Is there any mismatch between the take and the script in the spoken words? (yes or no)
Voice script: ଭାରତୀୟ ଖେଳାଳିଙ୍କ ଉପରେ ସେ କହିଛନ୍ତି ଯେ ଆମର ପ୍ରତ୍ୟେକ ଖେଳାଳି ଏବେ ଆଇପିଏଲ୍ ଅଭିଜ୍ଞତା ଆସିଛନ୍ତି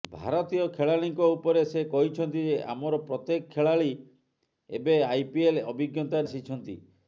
no